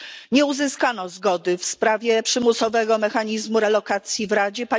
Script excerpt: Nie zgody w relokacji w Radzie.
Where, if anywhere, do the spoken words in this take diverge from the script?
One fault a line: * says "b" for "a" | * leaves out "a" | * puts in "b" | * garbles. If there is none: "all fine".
* puts in "uzyskano"
* puts in "sprawie przymusowego mechanizmu"